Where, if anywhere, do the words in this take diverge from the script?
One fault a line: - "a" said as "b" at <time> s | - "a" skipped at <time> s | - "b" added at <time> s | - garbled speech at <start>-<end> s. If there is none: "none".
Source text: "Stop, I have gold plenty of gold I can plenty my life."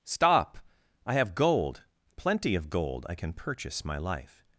- "plenty" said as "purchase" at 3.3 s